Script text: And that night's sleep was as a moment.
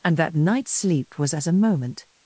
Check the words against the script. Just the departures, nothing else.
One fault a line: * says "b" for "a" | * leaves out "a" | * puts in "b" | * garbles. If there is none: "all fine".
all fine